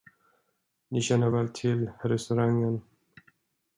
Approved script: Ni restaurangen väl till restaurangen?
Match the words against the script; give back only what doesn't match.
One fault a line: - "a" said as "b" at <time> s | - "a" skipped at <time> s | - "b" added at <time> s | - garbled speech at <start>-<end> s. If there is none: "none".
- "restaurangen" said as "känner" at 1.0 s